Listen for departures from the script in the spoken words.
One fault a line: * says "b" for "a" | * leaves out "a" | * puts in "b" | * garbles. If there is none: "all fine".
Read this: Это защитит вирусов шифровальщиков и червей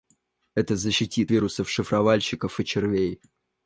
all fine